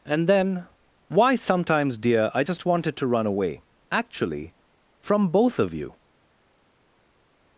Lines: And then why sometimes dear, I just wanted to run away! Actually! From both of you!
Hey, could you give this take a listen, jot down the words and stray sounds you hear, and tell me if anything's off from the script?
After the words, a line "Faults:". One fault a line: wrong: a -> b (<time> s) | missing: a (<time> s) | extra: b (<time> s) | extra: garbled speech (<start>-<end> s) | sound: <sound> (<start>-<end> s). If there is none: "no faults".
And then why sometimes dear, I just wanted to run away! Actually! From both of you!
Faults:
no faults